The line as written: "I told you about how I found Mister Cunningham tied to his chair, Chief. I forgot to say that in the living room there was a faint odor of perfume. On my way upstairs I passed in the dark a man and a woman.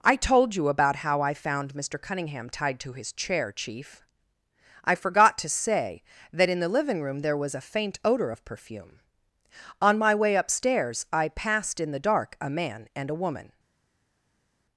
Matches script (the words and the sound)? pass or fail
pass